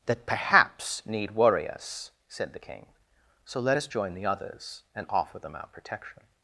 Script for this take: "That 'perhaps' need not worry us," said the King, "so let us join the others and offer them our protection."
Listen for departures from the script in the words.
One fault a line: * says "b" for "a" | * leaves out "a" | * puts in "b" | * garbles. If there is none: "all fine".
* leaves out "not"